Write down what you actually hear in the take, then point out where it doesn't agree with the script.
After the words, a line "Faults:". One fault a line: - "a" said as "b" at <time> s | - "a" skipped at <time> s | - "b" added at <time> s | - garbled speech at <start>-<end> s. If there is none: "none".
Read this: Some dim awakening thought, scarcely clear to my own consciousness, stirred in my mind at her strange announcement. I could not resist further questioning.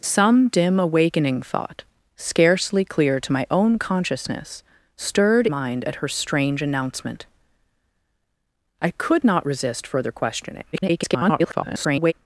Some dim awakening thought, scarcely clear to my own consciousness, stirred mind at her strange announcement. I could not resist further questioning. [garbled]
Faults:
- "in my" skipped at 5.5 s
- garbled speech at 10.7-12.1 s